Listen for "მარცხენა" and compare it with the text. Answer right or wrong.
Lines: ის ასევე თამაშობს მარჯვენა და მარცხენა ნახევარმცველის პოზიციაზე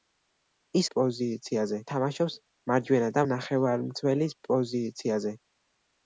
wrong